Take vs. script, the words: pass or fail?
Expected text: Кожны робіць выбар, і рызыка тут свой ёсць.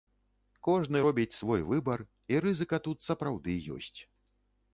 fail